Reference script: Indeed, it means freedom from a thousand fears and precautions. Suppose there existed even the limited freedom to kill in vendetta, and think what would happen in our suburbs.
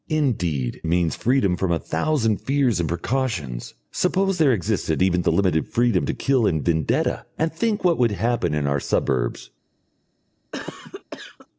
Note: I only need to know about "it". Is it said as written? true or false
false